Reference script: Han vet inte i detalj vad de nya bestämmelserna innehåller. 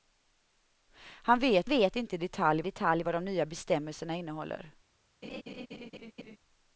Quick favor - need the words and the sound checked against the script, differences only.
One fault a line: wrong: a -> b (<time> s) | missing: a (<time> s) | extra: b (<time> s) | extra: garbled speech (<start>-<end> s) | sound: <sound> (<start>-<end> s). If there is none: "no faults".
extra: vet (1.7 s)
extra: detalj (2.6 s)
sound: laugh (5.2-6.4 s)